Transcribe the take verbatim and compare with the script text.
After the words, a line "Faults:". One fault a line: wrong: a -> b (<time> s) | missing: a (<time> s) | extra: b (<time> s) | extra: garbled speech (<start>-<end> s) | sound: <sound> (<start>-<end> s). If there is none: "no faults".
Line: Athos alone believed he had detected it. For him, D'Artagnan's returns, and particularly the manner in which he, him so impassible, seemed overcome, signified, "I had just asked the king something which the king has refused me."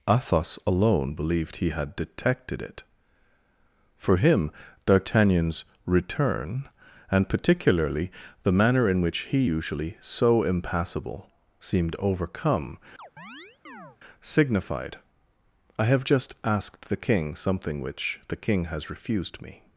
Athos alone believed he had detected it. For him, D'Artagnan's return, and particularly the manner in which he, usually so impassible, seemed overcome, signified, "I have just asked the king something which the king has refused me."
Faults:
wrong: returns -> return (5.8 s)
wrong: him -> usually (9.4 s)
sound: chirp (13.0-14.0 s)
wrong: had -> have (15.9 s)